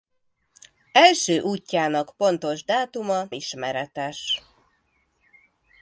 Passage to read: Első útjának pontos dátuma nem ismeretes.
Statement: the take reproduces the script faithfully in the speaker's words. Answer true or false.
false